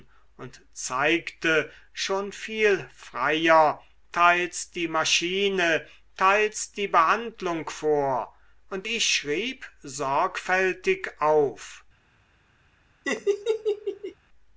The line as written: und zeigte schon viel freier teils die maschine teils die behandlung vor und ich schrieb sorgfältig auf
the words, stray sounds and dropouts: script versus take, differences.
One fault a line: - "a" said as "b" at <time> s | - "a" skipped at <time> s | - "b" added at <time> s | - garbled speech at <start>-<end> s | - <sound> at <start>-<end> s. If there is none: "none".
- laugh at 13.0-14.1 s